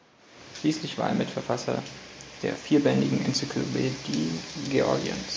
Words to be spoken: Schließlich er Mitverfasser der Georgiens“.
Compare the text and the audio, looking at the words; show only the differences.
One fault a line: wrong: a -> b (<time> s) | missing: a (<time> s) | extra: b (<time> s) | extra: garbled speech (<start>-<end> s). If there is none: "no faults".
extra: war (1.0 s)
extra: vierbändigen Enzyklopädie (2.5 s)